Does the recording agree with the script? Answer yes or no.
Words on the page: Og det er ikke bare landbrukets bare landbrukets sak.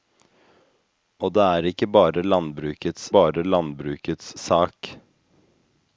yes